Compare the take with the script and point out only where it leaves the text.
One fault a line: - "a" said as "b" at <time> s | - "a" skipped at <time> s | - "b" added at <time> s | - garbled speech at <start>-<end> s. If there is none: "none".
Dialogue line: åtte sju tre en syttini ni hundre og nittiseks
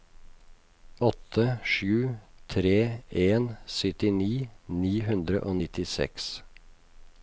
none